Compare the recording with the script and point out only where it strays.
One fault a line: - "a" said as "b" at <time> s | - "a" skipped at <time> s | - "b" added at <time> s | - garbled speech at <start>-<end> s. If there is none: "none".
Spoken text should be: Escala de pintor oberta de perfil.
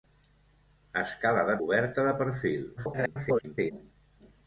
- "pintor" skipped at 1.6 s
- garbled speech at 2.8-3.7 s